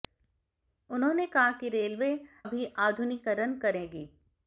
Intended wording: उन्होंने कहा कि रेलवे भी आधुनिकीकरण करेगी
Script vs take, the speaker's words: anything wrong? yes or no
no